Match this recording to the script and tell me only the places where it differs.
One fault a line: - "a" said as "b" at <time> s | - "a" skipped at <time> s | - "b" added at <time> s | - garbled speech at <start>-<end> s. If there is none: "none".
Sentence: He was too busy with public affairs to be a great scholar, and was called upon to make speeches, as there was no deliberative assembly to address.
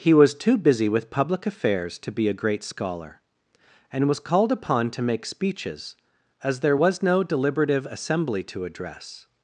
none